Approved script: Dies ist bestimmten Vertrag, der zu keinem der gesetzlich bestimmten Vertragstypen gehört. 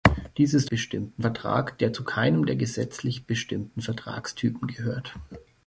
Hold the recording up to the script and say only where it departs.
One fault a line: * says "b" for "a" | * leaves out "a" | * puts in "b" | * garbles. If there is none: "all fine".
all fine